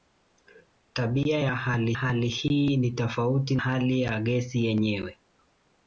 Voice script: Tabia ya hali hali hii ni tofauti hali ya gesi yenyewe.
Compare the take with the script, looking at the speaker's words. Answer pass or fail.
pass